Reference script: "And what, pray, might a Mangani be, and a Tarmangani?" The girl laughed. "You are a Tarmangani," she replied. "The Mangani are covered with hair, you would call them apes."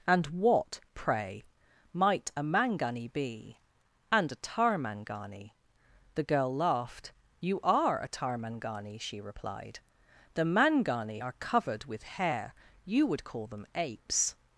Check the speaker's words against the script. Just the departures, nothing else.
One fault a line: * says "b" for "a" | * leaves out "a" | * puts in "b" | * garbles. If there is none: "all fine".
all fine